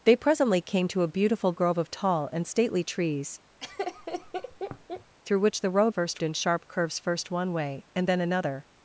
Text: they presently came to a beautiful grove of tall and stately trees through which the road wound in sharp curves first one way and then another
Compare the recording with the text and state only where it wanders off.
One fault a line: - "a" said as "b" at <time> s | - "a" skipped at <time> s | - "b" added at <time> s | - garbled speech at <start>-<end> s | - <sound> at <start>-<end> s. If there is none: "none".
- laugh at 3.6-5.1 s
- "wound" said as "first" at 5.9 s